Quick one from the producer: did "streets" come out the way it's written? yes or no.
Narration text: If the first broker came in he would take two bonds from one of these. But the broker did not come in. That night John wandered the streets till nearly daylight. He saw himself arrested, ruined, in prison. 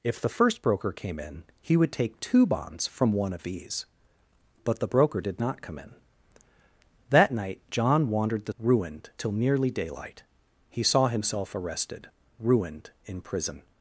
no